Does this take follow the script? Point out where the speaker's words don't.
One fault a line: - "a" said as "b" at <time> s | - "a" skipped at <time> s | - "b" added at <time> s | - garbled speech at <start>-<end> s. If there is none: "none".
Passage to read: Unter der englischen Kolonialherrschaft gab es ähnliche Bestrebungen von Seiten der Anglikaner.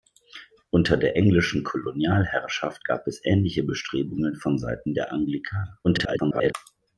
- garbled speech at 5.8-6.5 s